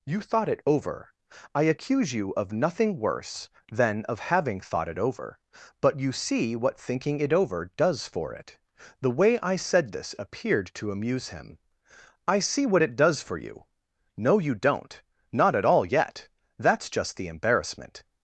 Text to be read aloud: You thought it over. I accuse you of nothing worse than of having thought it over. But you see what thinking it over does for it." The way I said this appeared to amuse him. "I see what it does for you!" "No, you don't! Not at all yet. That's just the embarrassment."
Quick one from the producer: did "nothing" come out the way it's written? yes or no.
yes